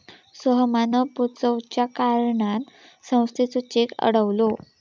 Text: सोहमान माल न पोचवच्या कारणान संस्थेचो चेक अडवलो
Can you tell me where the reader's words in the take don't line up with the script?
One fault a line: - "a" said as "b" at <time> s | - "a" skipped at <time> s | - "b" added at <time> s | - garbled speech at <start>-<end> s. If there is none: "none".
- "माल" skipped at 0.9 s